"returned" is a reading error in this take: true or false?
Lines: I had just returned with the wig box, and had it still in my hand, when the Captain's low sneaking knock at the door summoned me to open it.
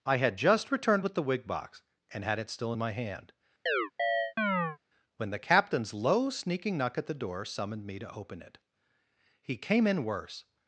false